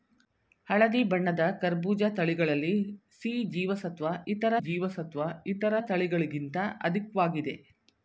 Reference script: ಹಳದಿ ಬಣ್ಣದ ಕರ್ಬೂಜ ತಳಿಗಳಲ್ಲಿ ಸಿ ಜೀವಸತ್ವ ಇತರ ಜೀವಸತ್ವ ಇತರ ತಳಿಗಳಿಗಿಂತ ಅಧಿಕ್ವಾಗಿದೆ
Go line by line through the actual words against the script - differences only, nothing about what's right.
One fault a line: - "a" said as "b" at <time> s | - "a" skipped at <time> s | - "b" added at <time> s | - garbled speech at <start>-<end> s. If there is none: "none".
none